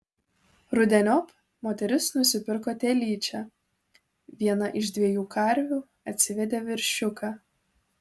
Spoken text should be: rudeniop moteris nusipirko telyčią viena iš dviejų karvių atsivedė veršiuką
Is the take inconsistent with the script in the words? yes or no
no